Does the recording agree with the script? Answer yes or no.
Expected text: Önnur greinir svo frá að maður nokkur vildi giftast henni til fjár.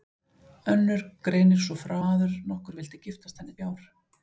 no